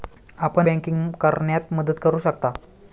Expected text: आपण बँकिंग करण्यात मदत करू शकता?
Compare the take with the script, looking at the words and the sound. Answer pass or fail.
pass